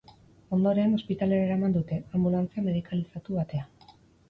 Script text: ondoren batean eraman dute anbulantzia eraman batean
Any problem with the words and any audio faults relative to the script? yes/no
yes